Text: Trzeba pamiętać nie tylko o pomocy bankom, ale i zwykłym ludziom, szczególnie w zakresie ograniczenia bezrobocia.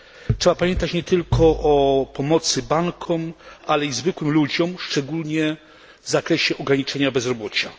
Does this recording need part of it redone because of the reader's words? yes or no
no